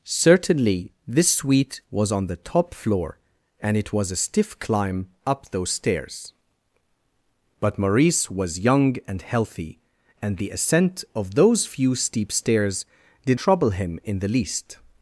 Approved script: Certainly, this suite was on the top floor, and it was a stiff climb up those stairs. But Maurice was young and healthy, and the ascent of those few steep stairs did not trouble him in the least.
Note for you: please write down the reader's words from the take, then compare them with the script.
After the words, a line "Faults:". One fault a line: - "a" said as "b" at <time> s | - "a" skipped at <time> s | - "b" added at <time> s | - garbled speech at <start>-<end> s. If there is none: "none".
Certainly, this suite was on the top floor, and it was a stiff climb up those stairs. But Maurice was young and healthy, and the ascent of those few steep stairs did trouble him in the least.
Faults:
- "not" skipped at 13.4 s